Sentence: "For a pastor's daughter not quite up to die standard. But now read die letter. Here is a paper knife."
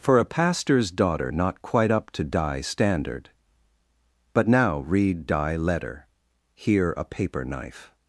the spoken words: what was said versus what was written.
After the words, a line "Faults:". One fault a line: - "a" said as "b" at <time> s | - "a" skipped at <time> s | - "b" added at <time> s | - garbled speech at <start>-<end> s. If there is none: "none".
"For a pastor's daughter not quite up to die standard. But now read die letter. Here a paper knife."
Faults:
- "is" skipped at 6.9 s